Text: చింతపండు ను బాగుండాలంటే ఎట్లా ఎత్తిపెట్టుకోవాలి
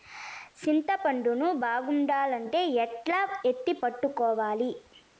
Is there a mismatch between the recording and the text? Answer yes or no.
no